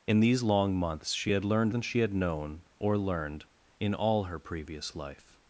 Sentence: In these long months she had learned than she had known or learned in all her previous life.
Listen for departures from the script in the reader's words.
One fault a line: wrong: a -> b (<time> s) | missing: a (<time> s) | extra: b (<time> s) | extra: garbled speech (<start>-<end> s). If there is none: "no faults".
no faults